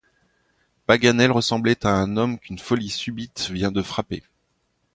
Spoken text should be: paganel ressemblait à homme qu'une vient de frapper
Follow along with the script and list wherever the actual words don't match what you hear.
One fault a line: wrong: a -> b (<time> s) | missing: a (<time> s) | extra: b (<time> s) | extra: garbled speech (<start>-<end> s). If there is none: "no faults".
extra: un (1.9 s)
extra: folie subite (2.6 s)